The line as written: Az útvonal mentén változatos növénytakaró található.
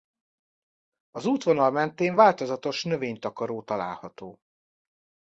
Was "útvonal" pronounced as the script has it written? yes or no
yes